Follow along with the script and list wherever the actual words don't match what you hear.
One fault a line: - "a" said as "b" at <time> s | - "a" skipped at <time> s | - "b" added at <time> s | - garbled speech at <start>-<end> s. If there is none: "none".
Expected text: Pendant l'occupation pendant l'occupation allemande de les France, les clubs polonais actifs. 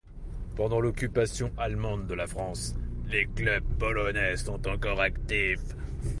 - "pendant l'occupation" skipped at 1.5 s
- "les" said as "la" at 2.1 s
- "sont encore" added at 4.4 s